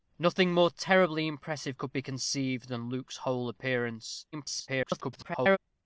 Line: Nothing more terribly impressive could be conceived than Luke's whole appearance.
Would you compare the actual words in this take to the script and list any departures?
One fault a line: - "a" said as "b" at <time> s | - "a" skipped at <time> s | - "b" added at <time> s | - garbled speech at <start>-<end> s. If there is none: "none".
- garbled speech at 4.3-5.6 s